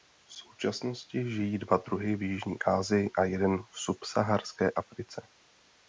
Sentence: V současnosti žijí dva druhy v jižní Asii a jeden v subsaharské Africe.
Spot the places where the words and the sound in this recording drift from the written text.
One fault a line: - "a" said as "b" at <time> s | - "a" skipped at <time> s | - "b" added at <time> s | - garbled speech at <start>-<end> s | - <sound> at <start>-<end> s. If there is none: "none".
none